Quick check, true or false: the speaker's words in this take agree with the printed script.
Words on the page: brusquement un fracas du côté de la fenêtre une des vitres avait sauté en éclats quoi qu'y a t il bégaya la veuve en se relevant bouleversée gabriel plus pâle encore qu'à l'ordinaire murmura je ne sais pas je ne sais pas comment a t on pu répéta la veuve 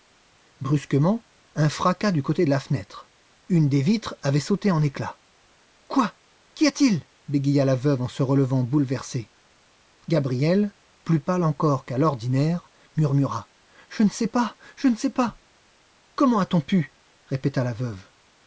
true